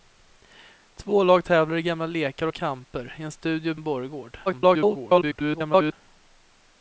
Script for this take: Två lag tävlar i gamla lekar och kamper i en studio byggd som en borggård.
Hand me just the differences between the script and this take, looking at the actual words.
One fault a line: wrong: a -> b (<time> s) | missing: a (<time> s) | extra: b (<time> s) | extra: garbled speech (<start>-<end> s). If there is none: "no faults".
missing: byggd som (3.7 s)
extra: garbled speech (4.5-5.9 s)